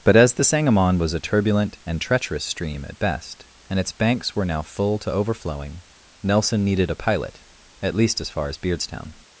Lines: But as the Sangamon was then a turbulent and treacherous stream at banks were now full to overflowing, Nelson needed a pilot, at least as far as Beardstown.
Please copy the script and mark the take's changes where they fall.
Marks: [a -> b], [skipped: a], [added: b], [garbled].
But as the Sangamon was [skipped: then] a turbulent and treacherous stream at [added: best and its] banks were now full to overflowing, Nelson needed a pilot, at least as far as Beardstown.